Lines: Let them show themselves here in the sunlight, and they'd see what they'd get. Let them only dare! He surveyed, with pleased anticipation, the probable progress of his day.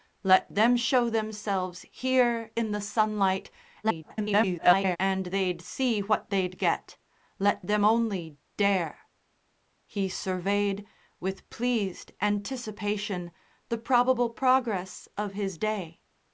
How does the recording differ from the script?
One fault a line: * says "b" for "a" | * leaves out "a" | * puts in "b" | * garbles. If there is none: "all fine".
* garbles